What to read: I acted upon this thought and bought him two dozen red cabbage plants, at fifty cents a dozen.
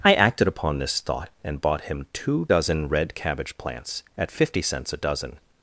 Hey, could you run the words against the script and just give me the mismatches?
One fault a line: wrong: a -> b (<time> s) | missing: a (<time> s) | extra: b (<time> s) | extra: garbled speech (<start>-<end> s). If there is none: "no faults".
no faults